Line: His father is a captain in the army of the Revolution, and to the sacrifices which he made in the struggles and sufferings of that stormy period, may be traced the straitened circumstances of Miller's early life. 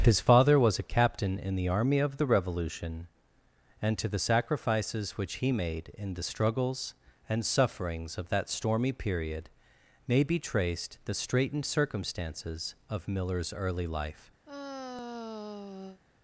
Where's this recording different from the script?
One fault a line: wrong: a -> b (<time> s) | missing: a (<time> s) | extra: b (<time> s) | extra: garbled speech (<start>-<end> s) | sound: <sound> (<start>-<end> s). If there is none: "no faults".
wrong: is -> was (0.6 s)
sound: sigh (14.4-16.0 s)